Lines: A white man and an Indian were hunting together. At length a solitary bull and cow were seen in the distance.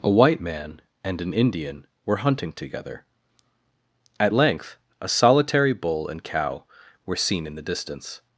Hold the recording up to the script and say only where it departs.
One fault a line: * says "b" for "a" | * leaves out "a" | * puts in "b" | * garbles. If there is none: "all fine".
all fine